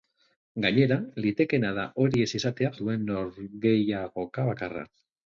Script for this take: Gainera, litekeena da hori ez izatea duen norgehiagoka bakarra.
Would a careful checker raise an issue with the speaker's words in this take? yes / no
no